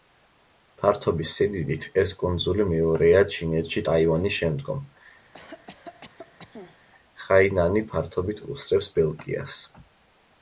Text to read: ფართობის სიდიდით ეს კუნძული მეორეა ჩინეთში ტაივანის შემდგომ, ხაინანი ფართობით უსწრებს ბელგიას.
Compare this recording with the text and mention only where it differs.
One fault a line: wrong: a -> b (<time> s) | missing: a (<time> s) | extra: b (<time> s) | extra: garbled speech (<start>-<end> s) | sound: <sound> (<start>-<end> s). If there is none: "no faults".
sound: cough (5.3-6.8 s)